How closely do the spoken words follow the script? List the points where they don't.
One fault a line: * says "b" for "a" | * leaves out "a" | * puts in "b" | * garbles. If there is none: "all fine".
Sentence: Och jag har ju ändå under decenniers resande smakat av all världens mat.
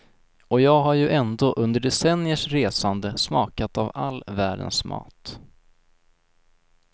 all fine